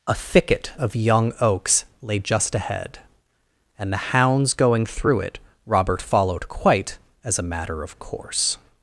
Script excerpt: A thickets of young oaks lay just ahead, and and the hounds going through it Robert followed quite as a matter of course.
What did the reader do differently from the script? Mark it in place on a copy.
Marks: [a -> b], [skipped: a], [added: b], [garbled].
A [thickets -> thicket] of young oaks lay just ahead, and [skipped: and] the hounds going through it Robert followed quite as a matter of course.